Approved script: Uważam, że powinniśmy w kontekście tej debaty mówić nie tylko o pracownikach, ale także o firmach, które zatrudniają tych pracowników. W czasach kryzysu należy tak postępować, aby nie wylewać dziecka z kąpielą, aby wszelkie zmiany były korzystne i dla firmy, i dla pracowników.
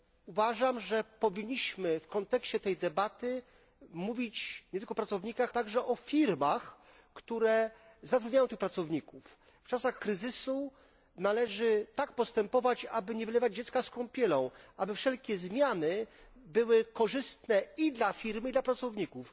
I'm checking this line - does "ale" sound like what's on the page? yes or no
no